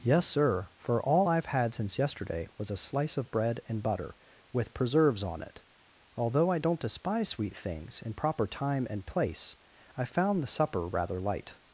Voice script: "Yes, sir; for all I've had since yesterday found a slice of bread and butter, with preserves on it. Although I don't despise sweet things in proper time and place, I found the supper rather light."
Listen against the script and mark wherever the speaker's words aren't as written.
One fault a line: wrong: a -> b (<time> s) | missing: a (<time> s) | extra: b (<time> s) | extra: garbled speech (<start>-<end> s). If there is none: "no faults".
wrong: found -> was (2.6 s)